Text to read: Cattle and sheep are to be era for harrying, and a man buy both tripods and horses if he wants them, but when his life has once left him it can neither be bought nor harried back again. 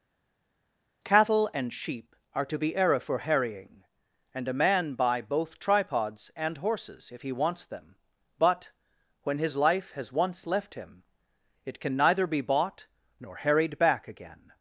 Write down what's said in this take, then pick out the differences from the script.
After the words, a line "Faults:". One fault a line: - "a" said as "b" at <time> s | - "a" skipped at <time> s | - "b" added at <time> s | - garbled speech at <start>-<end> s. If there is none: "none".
Cattle and sheep are to be era for harrying, and a man buy both tripods and horses if he wants them, but when his life has once left him it can neither be bought nor harried back again.
Faults:
none